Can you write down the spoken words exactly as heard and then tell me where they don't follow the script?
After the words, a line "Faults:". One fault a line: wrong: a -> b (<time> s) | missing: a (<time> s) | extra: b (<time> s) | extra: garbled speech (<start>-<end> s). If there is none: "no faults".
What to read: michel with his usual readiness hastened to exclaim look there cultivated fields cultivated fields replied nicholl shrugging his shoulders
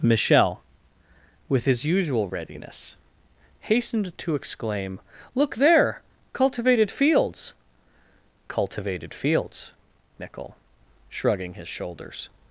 michel with his usual readiness hastened to exclaim look there cultivated fields cultivated fields nicholl shrugging his shoulders
Faults:
missing: replied (9.7 s)